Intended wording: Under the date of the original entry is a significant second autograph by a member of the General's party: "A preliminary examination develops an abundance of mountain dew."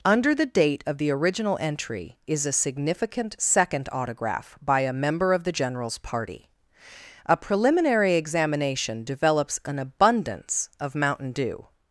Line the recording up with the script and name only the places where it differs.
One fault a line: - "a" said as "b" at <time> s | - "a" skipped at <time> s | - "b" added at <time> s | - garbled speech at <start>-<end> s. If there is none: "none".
none